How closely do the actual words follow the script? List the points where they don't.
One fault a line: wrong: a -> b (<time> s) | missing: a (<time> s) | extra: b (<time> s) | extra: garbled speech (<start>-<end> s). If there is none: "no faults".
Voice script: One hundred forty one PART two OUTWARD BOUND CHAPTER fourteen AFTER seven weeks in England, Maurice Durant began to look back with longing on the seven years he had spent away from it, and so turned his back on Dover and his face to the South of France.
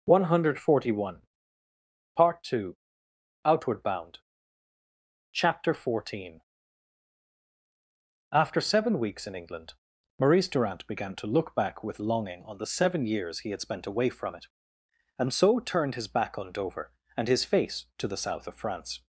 no faults